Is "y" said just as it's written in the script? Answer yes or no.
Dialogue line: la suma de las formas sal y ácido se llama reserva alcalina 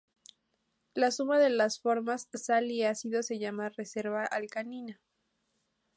yes